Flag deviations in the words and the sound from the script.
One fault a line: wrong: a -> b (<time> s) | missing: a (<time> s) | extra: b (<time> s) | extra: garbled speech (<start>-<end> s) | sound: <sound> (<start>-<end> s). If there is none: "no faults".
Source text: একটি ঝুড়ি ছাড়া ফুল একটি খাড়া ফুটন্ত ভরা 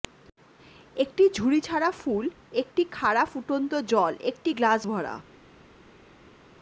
extra: জল একটি গ্লাস (3.9 s)